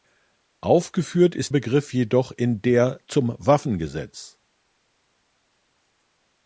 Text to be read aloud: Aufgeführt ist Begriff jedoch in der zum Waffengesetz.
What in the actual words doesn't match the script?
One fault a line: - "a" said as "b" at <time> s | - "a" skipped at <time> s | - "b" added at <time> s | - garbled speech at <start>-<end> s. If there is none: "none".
none